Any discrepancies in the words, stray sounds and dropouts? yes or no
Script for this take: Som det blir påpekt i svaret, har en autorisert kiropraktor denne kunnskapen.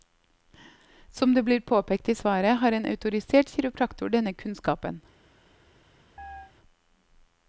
yes